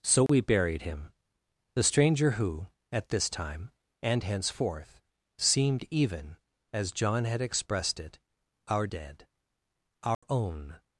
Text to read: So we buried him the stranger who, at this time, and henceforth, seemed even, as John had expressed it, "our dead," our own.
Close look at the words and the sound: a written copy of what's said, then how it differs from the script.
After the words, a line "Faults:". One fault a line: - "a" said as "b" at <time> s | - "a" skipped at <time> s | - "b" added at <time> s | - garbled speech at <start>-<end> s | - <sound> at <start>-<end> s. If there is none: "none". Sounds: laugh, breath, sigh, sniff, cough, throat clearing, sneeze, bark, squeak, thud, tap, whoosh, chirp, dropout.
So we buried him the stranger who, at this time, and henceforth, seemed even, as John had expressed it, "our dead," our own.
Faults:
- dropout at 0.3-0.3 s
- dropout at 10.1-10.2 s